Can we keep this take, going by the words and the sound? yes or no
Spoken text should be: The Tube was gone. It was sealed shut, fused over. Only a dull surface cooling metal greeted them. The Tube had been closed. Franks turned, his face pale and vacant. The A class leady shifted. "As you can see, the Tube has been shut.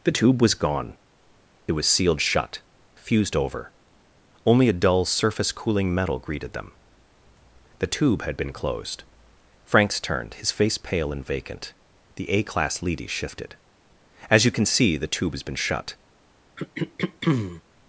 no